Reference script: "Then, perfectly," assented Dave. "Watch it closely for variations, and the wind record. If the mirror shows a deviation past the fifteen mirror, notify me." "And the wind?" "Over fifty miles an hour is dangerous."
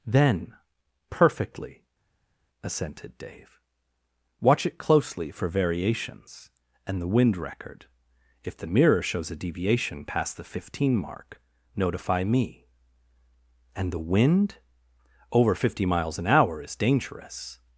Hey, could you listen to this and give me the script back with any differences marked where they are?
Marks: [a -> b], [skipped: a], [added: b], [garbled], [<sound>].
"Then, perfectly," assented Dave. "Watch it closely for variations, and the wind record. If the mirror shows a deviation past the fifteen [mirror, -> mark] notify me." "And the wind?" "Over fifty miles an hour is dangerous."